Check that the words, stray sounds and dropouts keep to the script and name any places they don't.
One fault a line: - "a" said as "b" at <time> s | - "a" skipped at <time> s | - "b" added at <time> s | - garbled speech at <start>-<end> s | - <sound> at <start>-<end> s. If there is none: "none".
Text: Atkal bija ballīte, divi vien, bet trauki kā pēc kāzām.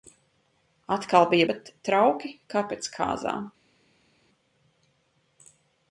- "ballīte divi vien" skipped at 1.5 s